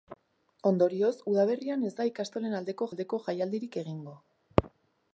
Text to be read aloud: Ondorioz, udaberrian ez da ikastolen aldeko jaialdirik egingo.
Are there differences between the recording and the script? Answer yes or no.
yes